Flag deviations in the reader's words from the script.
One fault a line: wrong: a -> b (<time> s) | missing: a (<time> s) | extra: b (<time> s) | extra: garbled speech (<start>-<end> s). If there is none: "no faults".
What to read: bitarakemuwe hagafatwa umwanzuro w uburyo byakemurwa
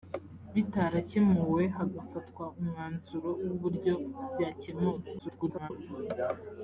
extra: garbled speech (5.2-5.7 s)